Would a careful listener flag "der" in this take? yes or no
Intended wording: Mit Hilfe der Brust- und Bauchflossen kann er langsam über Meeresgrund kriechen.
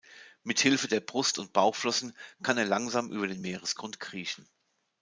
no